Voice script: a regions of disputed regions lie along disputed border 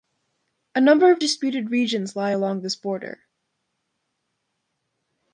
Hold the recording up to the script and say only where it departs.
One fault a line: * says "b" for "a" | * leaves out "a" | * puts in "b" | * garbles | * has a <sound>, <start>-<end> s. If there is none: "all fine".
* says "number" for "regions"
* says "this" for "disputed"